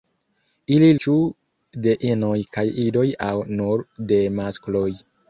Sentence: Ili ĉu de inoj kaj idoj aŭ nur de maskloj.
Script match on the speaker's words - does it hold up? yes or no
yes